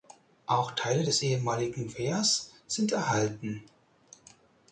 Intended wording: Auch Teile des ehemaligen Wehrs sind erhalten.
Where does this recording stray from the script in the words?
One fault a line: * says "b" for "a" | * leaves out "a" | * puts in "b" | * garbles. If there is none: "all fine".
all fine